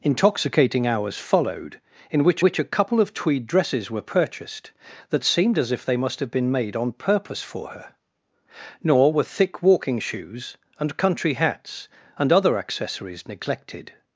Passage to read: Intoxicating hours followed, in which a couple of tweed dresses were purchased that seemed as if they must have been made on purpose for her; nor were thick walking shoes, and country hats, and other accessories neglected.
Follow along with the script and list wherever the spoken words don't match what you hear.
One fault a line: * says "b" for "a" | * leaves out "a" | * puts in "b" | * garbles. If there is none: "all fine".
* puts in "which"